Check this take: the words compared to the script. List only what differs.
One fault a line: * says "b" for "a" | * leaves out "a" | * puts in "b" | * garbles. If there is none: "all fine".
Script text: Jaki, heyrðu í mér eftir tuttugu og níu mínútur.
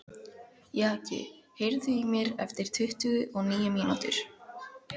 all fine